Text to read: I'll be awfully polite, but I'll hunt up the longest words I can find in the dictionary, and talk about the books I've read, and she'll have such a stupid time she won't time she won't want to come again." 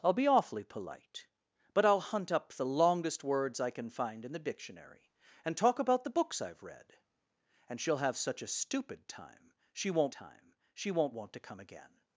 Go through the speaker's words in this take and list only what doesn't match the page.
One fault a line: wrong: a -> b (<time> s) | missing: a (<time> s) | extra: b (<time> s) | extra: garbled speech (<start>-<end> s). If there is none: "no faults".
no faults